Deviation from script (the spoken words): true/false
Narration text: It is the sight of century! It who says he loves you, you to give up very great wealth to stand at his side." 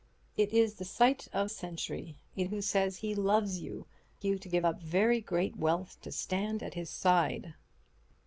false